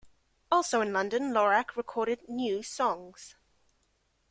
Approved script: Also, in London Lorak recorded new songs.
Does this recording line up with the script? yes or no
yes